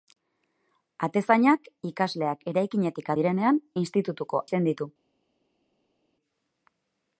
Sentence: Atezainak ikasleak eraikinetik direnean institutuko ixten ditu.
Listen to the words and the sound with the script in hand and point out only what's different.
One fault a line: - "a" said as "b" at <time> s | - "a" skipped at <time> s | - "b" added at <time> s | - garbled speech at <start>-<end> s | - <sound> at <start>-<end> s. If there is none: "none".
none